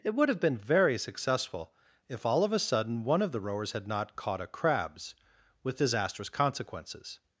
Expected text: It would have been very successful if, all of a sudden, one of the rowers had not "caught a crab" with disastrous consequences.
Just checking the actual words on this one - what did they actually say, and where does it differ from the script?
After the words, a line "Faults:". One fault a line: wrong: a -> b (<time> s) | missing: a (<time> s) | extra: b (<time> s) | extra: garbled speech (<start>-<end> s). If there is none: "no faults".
It would have been very successful if, all of a sudden, one of the rowers had not "caught a crabs" with disastrous consequences.
Faults:
wrong: crab -> crabs (4.5 s)